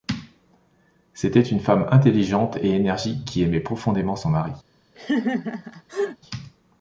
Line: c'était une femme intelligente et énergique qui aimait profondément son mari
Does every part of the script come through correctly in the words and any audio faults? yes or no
no